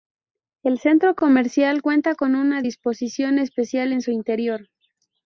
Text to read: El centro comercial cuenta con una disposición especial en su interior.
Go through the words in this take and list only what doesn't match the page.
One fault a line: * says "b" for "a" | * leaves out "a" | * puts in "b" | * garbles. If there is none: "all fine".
all fine